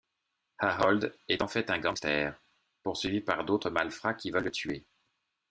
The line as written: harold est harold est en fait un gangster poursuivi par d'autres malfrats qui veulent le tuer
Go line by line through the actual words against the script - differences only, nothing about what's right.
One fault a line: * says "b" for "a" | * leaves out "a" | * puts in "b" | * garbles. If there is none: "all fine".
* leaves out "harold est"